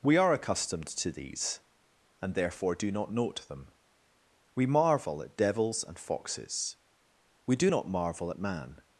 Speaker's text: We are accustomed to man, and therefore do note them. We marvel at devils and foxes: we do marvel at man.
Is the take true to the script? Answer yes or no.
no